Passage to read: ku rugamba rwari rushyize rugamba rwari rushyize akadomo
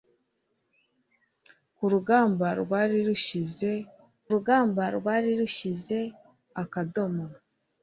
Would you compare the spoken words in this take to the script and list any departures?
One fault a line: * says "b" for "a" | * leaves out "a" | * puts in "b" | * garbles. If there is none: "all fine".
all fine